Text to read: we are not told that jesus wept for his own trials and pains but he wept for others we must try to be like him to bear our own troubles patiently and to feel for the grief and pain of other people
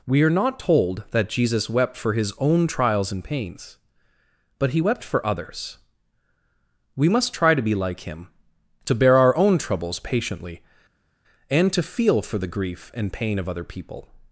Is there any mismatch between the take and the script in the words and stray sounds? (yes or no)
no